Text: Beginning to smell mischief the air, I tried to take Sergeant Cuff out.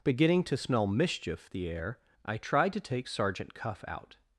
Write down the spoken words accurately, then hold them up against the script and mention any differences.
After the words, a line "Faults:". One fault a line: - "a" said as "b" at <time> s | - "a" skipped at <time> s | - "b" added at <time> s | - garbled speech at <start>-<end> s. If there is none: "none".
Beginning to smell mischief the air, I tried to take Sergeant Cuff out.
Faults:
none